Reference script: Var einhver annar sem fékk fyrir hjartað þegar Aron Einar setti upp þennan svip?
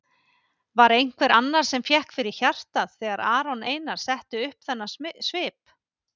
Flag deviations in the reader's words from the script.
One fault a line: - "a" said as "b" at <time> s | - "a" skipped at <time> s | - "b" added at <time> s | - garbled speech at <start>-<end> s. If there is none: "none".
none